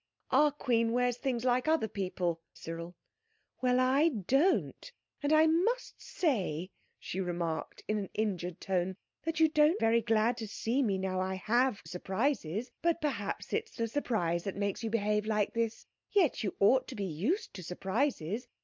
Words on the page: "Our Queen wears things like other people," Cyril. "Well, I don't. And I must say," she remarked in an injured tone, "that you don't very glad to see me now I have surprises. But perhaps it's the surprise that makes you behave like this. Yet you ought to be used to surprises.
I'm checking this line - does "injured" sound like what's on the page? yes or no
yes